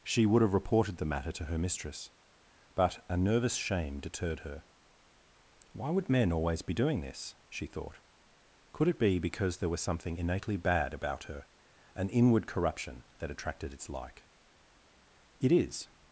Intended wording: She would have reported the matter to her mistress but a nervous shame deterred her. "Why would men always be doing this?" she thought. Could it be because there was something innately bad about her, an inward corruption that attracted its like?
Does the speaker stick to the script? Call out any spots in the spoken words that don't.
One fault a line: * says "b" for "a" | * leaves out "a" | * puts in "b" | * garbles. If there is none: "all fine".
* puts in "It is"